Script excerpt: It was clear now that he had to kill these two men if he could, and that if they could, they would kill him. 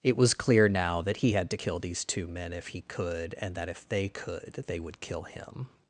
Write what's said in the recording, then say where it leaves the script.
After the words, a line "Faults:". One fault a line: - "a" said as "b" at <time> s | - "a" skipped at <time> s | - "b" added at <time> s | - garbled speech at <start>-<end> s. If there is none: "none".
It was clear now that he had to kill these two men if he could, and that if they could, they would kill him.
Faults:
none